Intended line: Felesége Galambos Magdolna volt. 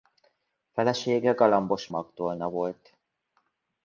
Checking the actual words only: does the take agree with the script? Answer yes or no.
yes